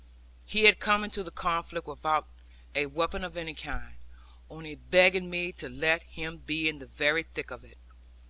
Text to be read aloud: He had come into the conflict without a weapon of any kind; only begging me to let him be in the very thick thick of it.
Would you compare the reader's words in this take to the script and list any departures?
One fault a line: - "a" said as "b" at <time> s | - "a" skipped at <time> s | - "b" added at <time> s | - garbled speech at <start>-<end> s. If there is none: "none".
- "thick" skipped at 7.5 s